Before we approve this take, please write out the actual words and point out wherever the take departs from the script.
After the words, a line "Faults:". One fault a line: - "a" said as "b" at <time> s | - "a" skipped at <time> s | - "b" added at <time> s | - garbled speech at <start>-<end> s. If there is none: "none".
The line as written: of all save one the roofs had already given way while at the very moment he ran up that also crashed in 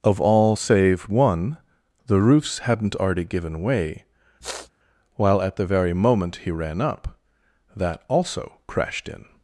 of all save one the roofs hadn't already given way while at the very moment he ran up that also crashed in
Faults:
- "had" said as "hadn't" at 2.6 s